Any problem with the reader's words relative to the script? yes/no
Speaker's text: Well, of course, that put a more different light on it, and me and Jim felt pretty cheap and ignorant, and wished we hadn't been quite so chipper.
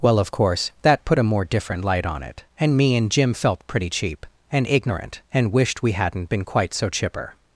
no